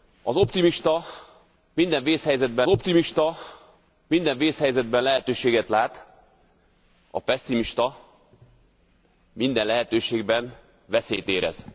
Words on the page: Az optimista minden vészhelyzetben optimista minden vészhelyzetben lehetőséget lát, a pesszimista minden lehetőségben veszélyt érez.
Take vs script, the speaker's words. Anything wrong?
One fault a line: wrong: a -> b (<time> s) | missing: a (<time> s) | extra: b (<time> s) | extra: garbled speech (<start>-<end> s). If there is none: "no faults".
no faults